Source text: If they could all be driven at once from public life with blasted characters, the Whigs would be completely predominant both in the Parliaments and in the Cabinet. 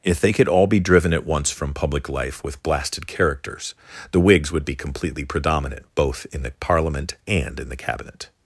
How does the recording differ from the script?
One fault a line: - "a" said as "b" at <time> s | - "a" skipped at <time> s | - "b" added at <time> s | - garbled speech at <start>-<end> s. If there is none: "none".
- "Parliaments" said as "Parliament" at 6.6 s